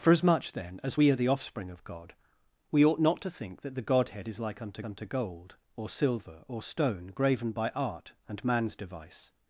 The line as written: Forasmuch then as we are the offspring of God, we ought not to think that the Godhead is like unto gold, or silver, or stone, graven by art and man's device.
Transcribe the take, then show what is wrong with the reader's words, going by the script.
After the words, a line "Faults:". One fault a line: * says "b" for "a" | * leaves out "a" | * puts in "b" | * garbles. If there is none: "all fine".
Forasmuch then as we are the offspring of God, we ought not to think that the Godhead is like unto unto gold, or silver, or stone, graven by art and man's device.
Faults:
* puts in "unto"